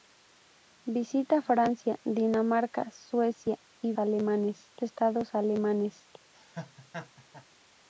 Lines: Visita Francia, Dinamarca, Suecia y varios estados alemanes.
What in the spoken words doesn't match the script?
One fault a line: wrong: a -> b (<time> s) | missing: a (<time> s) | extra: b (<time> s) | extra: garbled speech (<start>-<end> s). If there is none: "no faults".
wrong: varios -> alemanes (4.0 s)